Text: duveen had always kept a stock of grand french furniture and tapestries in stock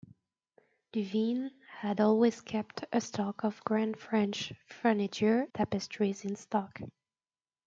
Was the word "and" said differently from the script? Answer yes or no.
yes